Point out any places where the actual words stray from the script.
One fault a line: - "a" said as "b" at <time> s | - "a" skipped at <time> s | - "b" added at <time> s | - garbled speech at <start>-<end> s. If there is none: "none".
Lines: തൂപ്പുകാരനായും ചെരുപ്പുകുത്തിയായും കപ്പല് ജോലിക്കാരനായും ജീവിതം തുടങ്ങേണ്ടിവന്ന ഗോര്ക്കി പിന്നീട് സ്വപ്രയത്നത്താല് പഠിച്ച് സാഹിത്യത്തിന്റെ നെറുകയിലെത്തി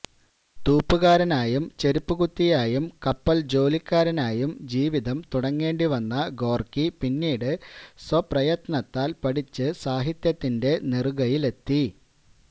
none